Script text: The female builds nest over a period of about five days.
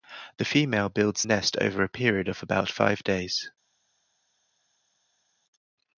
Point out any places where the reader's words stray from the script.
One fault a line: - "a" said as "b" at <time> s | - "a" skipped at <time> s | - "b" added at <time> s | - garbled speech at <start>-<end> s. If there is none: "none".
none